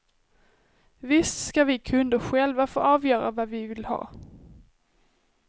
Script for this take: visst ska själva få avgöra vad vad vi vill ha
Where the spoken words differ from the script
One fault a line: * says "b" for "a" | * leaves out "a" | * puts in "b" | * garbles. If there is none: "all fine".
* puts in "vi kunder"
* leaves out "vad"